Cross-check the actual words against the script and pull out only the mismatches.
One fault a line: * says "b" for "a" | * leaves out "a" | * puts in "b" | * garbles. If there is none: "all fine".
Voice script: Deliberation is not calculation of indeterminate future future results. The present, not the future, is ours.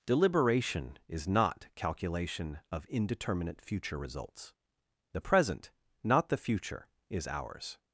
* leaves out "future"